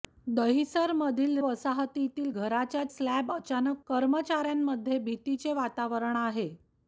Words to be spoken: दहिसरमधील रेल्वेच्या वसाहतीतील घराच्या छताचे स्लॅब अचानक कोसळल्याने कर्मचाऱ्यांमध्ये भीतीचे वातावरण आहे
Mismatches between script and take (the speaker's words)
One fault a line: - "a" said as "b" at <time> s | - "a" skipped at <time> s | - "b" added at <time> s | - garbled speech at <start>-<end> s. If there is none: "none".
- "रेल्वेच्या" skipped at 1.4 s
- "छताचे" skipped at 2.8 s
- "कोसळल्याने" skipped at 3.8 s